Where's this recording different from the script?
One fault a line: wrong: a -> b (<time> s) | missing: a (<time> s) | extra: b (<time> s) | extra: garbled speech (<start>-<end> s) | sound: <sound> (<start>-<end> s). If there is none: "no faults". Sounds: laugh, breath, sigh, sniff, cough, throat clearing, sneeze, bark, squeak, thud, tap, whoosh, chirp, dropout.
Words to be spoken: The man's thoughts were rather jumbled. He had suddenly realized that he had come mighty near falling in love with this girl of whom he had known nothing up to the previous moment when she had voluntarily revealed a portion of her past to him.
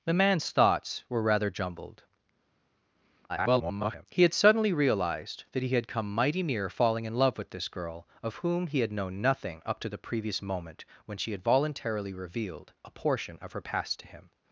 extra: garbled speech (3.3-4.1 s)